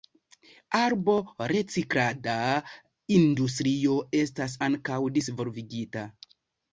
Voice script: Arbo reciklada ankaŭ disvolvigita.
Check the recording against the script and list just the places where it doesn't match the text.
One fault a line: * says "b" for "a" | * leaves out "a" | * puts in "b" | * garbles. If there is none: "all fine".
* puts in "industrio estas"